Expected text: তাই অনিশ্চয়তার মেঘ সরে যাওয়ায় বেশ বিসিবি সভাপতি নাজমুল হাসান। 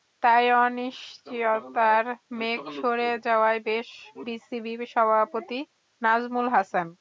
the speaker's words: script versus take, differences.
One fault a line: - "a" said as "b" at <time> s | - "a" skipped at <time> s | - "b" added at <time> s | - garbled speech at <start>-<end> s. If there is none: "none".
none